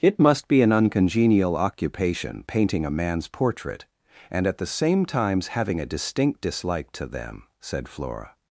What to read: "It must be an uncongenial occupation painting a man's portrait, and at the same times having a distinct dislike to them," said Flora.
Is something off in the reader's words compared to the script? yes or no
no